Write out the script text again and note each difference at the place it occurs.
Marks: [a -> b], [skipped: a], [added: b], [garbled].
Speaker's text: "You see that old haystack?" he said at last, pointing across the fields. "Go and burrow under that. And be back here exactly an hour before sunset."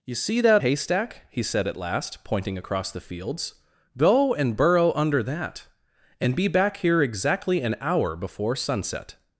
"You see that [skipped: old] haystack?" he said at last, pointing across the fields. "Go and burrow under that. And be back here exactly an hour before sunset."